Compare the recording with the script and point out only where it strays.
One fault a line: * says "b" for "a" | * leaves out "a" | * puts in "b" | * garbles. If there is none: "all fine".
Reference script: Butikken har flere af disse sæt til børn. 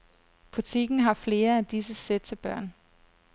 all fine